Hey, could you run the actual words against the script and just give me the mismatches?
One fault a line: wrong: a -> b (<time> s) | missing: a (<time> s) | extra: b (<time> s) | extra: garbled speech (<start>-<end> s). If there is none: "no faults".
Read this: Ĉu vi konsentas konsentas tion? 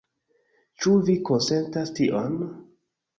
missing: konsentas (1.9 s)